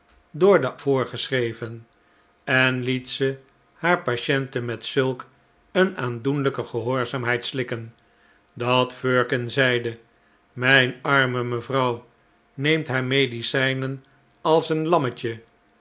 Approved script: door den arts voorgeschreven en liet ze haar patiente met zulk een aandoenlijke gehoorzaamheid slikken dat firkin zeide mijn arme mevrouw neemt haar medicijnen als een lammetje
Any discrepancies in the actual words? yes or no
yes